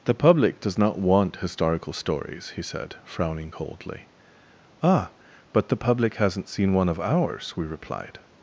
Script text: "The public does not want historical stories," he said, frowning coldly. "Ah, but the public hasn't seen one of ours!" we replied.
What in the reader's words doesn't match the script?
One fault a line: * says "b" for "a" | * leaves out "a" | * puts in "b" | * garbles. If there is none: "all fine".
all fine